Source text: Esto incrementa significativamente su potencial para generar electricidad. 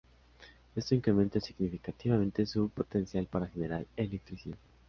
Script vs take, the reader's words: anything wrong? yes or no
no